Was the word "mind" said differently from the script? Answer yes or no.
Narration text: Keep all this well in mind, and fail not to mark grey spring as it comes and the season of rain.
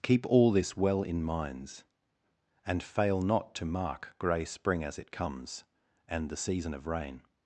yes